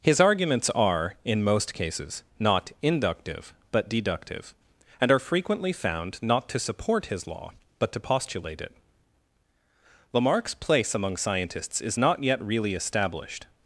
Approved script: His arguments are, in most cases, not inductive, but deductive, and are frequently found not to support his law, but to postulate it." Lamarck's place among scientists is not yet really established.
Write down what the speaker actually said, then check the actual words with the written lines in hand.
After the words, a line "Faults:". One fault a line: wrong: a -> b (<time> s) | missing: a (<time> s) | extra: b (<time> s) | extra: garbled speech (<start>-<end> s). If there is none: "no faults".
His arguments are, in most cases, not inductive, but deductive, and are frequently found not to support his law, but to postulate it." Lamarck's place among scientists is not yet really established.
Faults:
no faults